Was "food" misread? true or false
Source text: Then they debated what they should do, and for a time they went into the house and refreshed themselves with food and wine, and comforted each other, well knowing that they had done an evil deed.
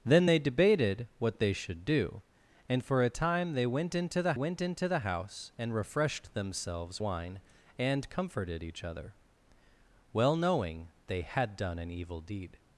true